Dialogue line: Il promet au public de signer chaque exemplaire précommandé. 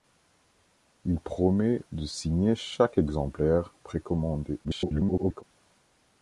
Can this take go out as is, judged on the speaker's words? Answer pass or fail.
fail